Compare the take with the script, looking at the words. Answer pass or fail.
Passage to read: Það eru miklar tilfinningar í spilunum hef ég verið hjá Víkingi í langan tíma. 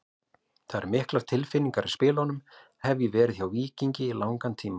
pass